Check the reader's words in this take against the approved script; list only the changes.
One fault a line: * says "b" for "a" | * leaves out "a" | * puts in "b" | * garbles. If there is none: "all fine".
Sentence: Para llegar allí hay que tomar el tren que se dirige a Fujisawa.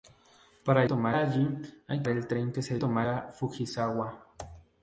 * says "tomar" for "llegar"
* leaves out "que tomar"
* says "tomar" for "dirige"